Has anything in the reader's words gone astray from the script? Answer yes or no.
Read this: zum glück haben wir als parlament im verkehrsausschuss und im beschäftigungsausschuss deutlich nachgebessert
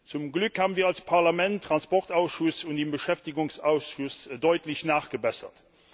yes